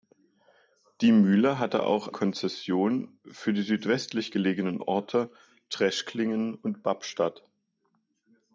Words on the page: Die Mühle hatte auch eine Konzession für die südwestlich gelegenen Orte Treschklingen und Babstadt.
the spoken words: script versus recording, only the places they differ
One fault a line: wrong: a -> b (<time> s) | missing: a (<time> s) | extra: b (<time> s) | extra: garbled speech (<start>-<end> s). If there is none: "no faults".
missing: eine (2.1 s)